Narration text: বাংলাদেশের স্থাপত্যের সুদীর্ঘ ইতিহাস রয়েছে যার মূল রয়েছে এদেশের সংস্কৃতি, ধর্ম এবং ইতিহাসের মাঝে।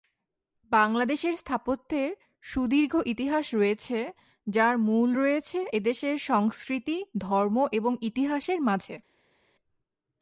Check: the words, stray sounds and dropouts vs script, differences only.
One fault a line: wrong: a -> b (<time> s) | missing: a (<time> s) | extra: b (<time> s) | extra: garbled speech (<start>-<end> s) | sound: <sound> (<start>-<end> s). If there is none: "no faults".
no faults